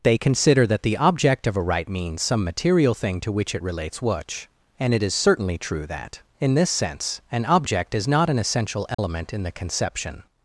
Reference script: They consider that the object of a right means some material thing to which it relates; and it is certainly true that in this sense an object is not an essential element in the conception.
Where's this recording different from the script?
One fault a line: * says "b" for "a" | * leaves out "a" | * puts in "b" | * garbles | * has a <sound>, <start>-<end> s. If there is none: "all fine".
* puts in "which"
* has a dropout, 8.9-9.0 s